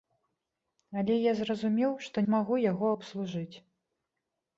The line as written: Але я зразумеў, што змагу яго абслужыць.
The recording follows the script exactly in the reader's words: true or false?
true